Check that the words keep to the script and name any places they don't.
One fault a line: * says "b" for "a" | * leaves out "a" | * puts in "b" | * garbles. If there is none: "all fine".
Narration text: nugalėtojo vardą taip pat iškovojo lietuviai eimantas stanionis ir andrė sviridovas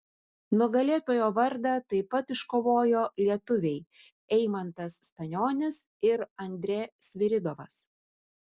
all fine